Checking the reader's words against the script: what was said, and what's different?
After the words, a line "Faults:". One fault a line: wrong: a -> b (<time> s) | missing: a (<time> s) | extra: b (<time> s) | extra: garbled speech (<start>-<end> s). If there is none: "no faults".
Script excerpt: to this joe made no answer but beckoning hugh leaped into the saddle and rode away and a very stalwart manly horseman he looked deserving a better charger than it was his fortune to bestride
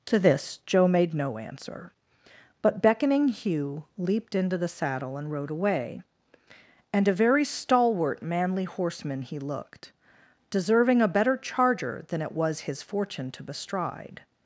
to this joe made no answer but beckoning hugh leaped into the saddle and rode away and a very stalwart manly horseman he looked deserving a better charger than it was his fortune to bestride
Faults:
no faults